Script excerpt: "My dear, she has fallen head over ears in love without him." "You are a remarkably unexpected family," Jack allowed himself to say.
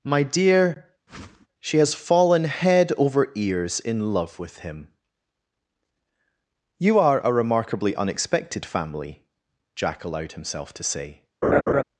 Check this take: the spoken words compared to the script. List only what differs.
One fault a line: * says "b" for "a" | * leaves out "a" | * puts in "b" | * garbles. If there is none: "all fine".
* says "with" for "without"